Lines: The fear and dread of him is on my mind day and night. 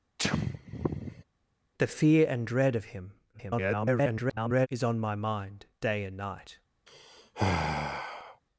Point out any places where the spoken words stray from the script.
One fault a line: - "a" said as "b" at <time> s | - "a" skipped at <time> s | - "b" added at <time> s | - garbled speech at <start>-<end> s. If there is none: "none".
- garbled speech at 3.3-4.7 s